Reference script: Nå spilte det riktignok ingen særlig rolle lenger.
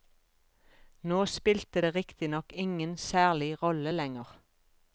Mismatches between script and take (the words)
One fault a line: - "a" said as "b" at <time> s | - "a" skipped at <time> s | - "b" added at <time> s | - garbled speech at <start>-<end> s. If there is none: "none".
none